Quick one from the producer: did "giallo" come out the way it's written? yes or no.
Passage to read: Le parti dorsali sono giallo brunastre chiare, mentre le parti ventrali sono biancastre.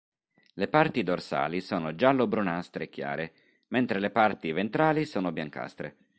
yes